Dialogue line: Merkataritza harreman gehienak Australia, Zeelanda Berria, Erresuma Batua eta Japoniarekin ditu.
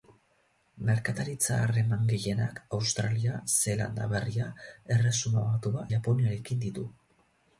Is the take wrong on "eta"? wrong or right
wrong